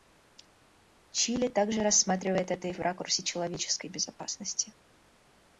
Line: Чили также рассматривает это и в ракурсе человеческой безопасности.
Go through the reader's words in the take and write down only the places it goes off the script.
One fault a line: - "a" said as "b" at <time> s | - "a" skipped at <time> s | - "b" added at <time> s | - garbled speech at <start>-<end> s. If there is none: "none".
none